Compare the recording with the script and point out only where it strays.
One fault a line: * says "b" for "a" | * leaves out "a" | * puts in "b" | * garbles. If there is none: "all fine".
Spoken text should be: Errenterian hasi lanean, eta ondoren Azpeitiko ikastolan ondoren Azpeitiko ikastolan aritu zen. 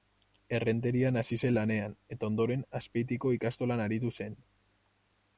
* puts in "zen"
* leaves out "ondoren Azpeitiko ikastolan"